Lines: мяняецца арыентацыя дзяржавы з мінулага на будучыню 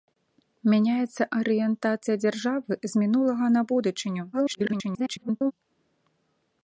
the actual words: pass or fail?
fail